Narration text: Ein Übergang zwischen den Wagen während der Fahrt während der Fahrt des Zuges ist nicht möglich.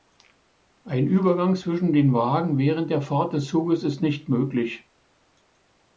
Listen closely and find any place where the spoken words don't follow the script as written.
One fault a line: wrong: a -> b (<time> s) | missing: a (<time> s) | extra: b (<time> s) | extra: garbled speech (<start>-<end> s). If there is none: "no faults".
missing: während der Fahrt (3.3 s)